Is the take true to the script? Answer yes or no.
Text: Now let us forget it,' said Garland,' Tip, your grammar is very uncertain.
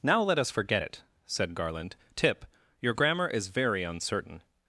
yes